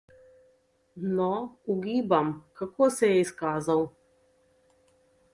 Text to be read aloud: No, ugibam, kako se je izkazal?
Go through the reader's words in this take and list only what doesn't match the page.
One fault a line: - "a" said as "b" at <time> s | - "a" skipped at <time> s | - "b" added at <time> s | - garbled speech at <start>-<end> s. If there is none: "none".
none